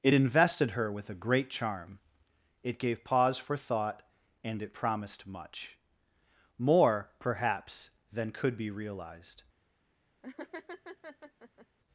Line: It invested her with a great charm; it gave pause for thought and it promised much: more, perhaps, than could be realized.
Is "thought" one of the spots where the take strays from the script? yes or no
no